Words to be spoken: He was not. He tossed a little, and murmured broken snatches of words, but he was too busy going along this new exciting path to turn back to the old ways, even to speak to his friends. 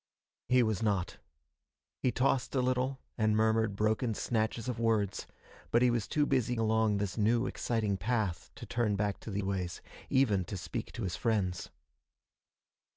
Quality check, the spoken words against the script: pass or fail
fail